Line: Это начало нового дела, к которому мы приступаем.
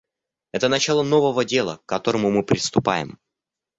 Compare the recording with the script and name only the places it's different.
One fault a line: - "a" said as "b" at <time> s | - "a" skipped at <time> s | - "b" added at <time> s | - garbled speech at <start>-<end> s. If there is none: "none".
none